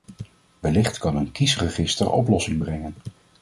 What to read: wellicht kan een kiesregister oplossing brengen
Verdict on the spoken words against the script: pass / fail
pass